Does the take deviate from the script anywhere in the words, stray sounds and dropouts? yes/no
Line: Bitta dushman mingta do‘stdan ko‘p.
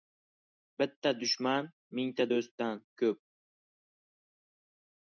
no